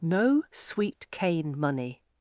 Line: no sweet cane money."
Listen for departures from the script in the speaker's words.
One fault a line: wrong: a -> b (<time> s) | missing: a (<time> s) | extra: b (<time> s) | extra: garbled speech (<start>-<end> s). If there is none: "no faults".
no faults